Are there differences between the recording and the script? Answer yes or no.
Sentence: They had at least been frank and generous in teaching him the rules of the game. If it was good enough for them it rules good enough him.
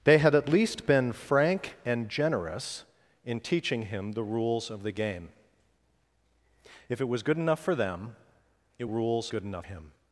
no